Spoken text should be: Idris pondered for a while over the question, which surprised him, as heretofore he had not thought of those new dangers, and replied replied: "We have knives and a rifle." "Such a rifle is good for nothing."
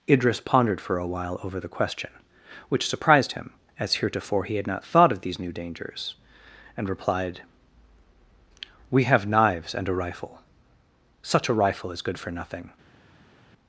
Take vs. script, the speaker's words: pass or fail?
fail